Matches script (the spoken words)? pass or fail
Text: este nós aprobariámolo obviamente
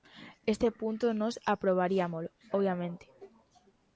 fail